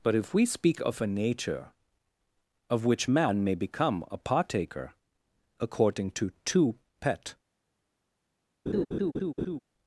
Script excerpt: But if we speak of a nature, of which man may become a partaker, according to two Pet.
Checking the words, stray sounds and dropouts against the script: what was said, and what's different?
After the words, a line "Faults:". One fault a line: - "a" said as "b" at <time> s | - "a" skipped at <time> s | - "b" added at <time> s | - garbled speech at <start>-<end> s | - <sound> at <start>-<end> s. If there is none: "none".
But if we speak of a nature, of which man may become a partaker, according to two Pet.
Faults:
- laugh at 8.7-9.6 s